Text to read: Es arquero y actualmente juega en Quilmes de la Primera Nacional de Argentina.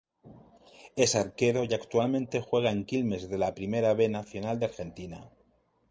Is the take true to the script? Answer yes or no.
no